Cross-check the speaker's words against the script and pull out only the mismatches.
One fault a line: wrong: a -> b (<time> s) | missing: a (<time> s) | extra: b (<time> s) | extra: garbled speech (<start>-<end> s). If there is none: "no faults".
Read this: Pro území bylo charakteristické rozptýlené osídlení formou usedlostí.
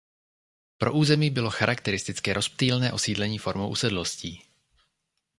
no faults